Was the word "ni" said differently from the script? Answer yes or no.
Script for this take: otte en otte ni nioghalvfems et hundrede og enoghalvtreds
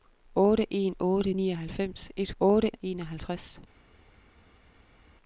yes